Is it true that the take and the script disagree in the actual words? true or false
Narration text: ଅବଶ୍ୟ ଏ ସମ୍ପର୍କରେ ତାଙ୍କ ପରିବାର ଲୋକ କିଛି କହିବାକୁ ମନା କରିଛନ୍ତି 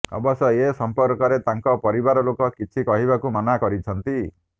false